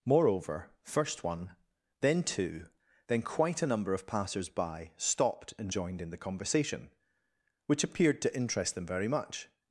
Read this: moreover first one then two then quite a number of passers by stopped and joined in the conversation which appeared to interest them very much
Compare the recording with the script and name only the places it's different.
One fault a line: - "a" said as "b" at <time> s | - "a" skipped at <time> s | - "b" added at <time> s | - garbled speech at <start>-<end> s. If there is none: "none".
none